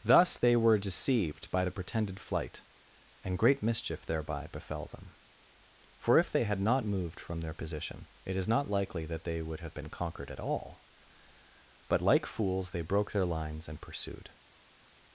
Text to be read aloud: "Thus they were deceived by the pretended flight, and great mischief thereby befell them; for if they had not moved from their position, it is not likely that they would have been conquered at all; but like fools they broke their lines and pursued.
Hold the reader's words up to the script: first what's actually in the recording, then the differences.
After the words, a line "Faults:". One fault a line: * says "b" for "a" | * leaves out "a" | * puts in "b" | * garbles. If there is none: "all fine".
"Thus they were deceived by the pretended flight, and great mischief thereby befell them; for if they had not moved from their position, it is not likely that they would have been conquered at all; but like fools they broke their lines and pursued.
Faults:
all fine